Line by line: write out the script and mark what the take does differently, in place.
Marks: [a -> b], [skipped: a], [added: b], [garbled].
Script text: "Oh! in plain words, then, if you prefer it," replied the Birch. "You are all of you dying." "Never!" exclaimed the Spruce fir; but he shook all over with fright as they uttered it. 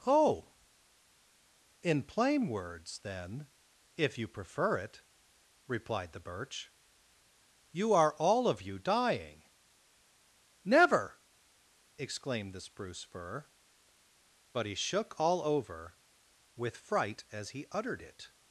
"Oh! in plain words, then, if you prefer it," replied the Birch. "You are all of you dying." "Never!" exclaimed the Spruce fir; but he shook all over with fright as [they -> he] uttered it.